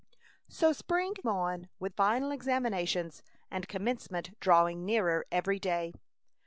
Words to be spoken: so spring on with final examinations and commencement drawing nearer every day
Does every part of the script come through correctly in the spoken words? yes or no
yes